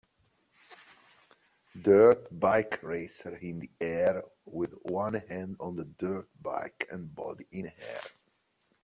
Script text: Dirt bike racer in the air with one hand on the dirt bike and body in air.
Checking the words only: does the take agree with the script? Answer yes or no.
yes